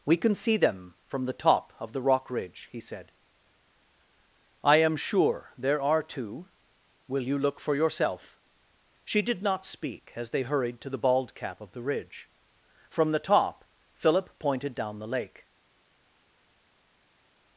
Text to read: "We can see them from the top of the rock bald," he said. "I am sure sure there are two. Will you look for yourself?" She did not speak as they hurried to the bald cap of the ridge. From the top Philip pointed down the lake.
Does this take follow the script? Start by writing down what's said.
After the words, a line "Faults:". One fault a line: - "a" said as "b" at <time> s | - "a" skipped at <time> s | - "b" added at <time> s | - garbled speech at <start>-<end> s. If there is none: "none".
"We can see them from the top of the rock ridge," he said. "I am sure there are two. Will you look for yourself?" She did not speak as they hurried to the bald cap of the ridge. From the top Philip pointed down the lake.
Faults:
- "bald" said as "ridge" at 2.3 s
- "sure" skipped at 5.5 s